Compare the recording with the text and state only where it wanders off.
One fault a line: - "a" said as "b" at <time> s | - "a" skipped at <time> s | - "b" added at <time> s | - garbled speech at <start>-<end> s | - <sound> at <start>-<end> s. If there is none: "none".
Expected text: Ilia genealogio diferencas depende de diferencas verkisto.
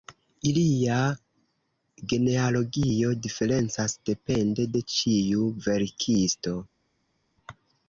- "diferencas" said as "ĉiu" at 5.0 s